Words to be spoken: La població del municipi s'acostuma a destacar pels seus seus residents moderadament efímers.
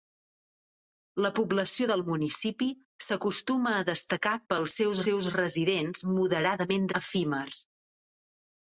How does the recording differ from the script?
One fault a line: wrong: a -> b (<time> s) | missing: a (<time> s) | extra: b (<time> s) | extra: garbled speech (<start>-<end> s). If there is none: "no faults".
no faults